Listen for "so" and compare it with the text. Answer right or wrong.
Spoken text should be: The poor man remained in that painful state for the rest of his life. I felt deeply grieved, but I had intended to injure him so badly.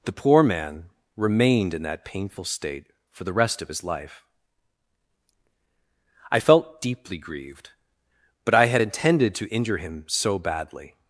right